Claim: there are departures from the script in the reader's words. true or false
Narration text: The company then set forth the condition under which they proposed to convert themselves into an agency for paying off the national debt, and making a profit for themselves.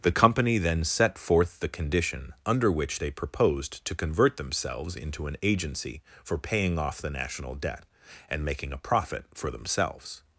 false